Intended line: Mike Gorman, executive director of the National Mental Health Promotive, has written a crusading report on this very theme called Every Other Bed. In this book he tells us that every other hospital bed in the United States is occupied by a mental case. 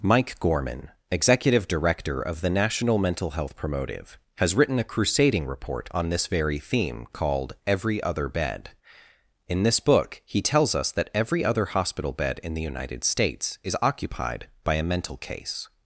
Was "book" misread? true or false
false